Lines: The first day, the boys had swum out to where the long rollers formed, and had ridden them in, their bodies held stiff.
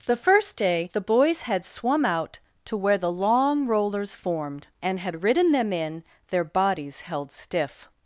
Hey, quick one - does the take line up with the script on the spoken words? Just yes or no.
yes